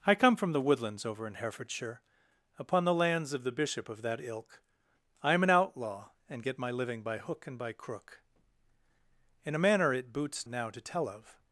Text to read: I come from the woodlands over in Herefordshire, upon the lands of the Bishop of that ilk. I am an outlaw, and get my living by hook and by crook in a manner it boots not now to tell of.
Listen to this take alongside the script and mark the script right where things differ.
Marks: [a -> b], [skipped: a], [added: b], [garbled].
I come from the woodlands over in Herefordshire, upon the lands of the Bishop of that ilk. I am an outlaw, and get my living by hook and by crook in a manner it boots [skipped: not] now to tell of.